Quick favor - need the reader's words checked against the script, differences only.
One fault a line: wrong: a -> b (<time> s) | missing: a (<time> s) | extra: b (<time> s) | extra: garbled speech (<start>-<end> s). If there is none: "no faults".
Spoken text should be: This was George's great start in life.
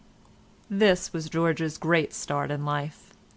no faults